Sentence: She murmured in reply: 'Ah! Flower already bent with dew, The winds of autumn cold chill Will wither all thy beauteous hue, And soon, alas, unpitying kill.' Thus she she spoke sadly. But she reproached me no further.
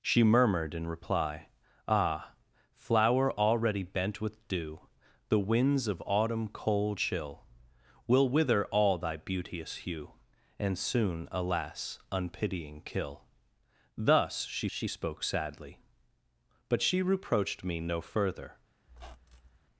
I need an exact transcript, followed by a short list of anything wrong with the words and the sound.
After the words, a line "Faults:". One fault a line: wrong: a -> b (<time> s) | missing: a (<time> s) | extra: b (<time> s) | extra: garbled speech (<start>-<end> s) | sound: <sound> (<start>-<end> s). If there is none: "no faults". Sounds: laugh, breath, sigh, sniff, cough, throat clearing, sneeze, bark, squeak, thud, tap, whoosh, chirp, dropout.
She murmured in reply: 'Ah! Flower already bent with dew, The winds of autumn cold chill Will wither all thy beauteous hue, And soon, alas, unpitying kill.' Thus she she spoke sadly. But she reproached me no further.
Faults:
sound: squeak (18.9-19.6 s)